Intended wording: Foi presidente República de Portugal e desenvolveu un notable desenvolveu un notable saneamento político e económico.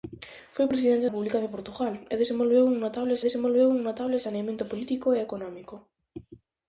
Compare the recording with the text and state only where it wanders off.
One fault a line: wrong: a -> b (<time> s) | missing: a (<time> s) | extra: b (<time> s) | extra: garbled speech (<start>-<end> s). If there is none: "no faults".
no faults